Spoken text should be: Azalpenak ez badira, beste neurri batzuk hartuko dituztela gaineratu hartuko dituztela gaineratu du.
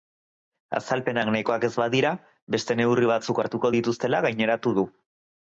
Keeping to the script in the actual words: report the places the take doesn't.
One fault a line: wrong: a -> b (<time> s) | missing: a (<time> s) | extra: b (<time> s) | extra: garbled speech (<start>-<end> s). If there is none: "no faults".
extra: nahikoak (1.4 s)
missing: hartuko dituztela gaineratu (4.8 s)